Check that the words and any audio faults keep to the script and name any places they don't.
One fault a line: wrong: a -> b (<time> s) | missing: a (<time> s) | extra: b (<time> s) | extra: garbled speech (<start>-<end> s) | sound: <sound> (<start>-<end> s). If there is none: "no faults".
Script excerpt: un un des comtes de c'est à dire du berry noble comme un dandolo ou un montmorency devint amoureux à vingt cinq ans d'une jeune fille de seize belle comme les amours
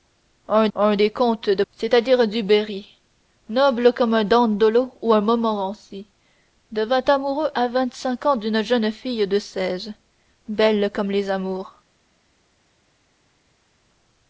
no faults